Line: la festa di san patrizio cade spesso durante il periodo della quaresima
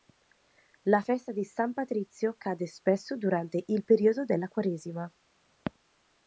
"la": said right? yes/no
yes